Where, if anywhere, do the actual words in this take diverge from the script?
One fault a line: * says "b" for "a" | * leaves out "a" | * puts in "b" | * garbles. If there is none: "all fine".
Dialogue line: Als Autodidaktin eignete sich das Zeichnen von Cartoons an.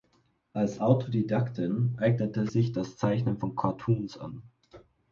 all fine